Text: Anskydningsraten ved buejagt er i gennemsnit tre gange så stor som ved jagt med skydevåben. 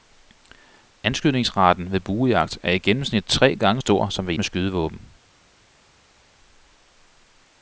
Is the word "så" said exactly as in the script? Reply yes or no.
no